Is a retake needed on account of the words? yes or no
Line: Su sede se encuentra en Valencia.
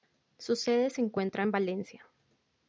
no